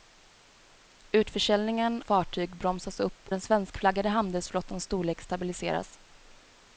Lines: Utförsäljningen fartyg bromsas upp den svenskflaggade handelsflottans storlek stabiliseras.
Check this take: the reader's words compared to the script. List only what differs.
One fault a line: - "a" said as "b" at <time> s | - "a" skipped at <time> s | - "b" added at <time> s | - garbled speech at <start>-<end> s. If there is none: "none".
none